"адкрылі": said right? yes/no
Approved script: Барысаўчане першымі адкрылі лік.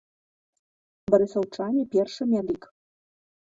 no